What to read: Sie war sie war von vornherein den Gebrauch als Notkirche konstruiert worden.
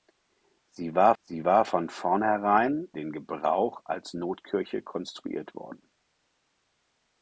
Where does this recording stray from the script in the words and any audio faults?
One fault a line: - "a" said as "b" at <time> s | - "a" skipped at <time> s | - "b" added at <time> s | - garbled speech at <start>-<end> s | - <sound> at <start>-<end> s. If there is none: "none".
none